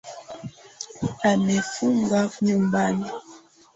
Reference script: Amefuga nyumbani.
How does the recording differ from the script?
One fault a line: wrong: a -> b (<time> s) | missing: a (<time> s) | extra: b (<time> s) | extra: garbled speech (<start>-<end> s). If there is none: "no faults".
no faults